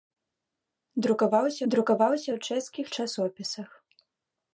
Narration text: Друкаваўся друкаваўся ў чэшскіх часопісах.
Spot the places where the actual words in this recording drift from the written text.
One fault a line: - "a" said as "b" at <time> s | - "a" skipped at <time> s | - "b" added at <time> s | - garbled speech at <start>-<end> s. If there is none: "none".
none